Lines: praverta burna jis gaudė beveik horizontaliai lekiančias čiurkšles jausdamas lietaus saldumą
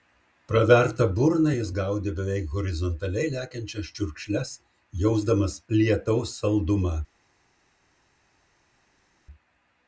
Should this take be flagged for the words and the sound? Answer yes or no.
no